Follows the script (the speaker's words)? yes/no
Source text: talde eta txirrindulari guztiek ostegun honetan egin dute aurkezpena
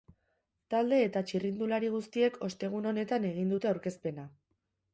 yes